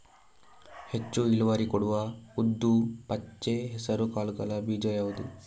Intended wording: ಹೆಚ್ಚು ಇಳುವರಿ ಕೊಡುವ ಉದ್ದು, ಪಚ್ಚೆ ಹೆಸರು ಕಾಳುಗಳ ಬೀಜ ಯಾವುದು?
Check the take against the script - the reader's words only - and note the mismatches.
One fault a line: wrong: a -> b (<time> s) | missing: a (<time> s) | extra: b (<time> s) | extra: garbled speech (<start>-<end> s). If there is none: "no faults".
no faults